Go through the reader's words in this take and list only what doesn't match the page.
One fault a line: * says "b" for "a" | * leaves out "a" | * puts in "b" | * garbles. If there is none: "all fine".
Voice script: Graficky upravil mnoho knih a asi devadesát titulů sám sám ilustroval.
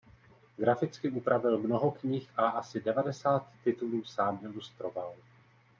* leaves out "sám"